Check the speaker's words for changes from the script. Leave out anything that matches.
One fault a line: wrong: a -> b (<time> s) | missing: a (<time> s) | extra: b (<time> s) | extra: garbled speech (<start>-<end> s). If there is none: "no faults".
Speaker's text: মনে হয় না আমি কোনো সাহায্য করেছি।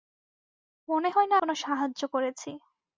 missing: আমি (1.4 s)